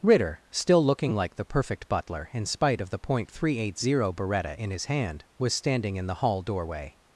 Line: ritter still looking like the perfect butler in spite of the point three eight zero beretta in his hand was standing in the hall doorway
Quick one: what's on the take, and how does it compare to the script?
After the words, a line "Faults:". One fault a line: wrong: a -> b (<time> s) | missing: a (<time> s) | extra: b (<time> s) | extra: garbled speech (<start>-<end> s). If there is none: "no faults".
ritter still looking like the perfect butler in spite of the point three eight zero beretta in his hand was standing in the hall doorway
Faults:
no faults